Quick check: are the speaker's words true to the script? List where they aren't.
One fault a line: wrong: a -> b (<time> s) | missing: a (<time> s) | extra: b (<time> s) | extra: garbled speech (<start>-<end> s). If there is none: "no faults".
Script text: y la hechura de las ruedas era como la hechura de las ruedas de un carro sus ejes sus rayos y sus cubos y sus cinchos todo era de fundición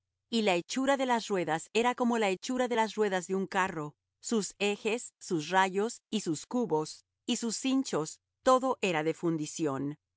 no faults